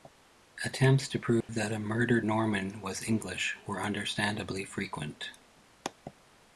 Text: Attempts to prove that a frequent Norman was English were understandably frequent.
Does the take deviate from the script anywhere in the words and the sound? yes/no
yes